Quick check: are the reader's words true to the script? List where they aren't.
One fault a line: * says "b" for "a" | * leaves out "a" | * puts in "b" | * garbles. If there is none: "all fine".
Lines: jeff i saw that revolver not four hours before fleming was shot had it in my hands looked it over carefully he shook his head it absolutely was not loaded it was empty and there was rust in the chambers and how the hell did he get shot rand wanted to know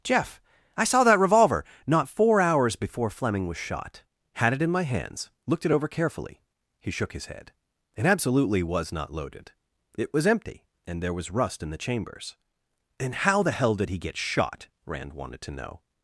all fine